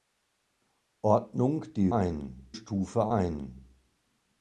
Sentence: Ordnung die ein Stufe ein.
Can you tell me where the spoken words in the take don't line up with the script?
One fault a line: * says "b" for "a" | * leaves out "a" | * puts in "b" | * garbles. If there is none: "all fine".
all fine